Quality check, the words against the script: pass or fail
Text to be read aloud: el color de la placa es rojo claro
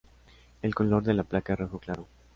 pass